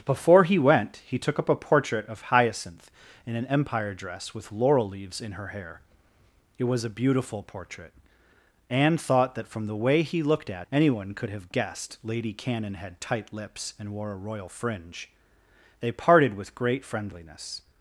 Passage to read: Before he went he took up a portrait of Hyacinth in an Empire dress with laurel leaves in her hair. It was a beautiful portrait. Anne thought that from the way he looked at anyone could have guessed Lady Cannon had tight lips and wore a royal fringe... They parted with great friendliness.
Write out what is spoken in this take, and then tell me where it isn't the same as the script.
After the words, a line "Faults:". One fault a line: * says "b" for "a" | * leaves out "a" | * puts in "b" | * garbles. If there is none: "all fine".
Before he went he took up a portrait of Hyacinth in an Empire dress with laurel leaves in her hair. It was a beautiful portrait. Anne thought that from the way he looked at anyone could have guessed Lady Cannon had tight lips and wore a royal fringe... They parted with great friendliness.
Faults:
all fine